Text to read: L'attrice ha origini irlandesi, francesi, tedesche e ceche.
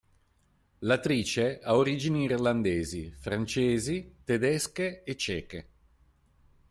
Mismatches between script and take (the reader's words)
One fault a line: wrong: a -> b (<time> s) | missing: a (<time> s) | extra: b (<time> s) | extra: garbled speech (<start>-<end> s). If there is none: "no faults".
no faults